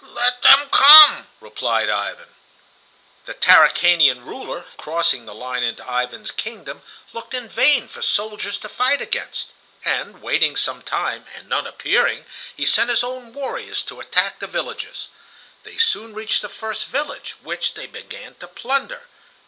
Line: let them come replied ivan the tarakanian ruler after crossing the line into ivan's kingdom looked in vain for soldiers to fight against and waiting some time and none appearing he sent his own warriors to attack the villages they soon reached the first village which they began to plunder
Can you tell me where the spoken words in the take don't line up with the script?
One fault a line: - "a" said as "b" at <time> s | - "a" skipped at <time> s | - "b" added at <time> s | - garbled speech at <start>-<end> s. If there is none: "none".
- "after" skipped at 4.7 s